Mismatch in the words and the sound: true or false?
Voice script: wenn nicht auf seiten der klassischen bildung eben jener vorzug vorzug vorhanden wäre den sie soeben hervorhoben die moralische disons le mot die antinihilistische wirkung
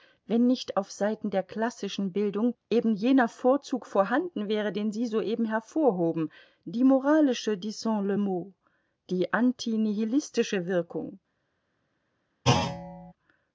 true